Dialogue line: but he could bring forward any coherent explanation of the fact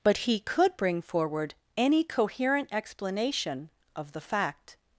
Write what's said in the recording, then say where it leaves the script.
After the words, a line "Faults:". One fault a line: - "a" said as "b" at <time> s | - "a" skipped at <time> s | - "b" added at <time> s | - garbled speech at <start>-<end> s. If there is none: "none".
but he could bring forward any coherent explanation of the fact
Faults:
none